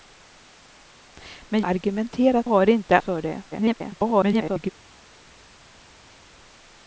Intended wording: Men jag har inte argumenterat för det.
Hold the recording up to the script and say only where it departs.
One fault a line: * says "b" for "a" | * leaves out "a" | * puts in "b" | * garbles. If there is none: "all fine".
* says "argumenterat" for "jag"
* leaves out "argumenterat"
* garbles